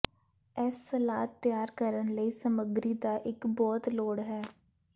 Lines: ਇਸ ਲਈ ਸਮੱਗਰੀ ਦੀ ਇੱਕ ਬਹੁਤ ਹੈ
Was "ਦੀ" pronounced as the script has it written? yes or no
no